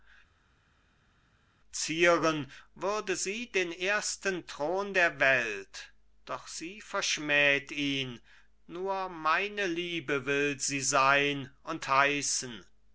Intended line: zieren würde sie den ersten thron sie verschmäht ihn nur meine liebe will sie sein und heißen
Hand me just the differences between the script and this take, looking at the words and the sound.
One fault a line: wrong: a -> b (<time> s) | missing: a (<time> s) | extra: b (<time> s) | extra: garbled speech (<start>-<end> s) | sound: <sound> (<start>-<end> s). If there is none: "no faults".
extra: der welt doch (4.9 s)